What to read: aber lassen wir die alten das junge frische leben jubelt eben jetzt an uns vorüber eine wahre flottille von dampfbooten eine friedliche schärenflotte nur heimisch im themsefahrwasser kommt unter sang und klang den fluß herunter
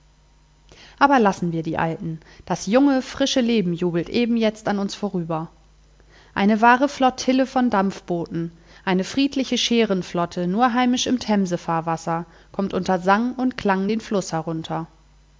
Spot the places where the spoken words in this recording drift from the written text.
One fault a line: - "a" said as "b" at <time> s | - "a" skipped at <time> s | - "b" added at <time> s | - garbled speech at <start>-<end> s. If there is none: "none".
none